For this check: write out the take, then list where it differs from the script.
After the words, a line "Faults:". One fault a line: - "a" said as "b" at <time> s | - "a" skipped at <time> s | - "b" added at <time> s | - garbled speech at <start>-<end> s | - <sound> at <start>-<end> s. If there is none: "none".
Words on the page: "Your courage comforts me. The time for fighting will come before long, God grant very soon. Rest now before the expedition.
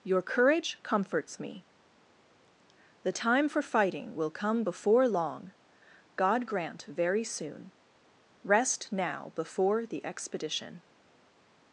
"Your courage comforts me. The time for fighting will come before long, God grant very soon. Rest now before the expedition.
Faults:
none